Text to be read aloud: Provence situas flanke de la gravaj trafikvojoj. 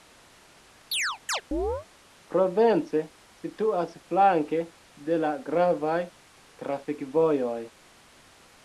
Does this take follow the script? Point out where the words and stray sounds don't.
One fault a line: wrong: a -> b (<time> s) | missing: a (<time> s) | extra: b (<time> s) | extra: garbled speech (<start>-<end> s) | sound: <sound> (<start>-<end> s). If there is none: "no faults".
sound: chirp (0.9-1.9 s)